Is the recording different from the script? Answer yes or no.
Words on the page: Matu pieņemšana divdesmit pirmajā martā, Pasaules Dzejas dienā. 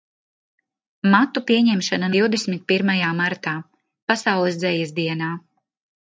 no